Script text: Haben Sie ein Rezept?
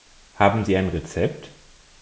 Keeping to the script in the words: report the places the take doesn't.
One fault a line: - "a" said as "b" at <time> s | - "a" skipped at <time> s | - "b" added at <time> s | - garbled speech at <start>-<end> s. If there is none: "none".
none